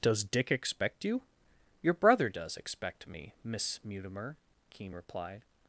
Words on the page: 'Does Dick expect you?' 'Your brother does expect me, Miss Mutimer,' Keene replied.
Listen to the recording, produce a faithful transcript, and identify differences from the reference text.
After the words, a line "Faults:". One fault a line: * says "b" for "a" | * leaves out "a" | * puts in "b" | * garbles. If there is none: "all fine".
'Does Dick expect you?' 'Your brother does expect me, Miss Mutimer,' Keene replied.
Faults:
all fine